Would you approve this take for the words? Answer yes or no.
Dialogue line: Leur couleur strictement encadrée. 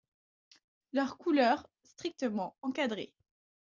yes